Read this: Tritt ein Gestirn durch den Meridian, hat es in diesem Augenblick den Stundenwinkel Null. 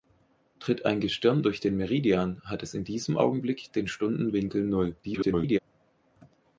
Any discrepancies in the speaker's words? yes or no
yes